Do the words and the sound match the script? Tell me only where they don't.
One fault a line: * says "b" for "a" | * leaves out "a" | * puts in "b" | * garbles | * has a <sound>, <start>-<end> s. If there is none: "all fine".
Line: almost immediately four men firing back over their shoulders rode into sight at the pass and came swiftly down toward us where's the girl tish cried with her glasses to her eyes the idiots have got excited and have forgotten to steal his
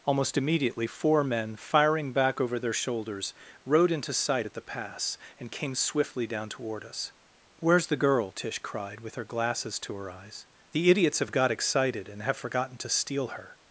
* says "her" for "his"